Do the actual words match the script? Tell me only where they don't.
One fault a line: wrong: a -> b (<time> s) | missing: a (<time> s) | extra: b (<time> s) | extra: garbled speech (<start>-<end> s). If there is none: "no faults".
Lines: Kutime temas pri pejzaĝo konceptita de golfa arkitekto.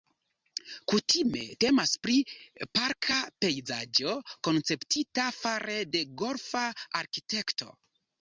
extra: parka (2.8 s)
extra: fare (5.4 s)